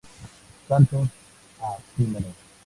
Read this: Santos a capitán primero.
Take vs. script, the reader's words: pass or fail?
fail